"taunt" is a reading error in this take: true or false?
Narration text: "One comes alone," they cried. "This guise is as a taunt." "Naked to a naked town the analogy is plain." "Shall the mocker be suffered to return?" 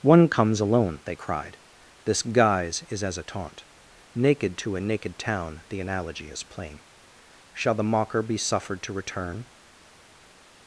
false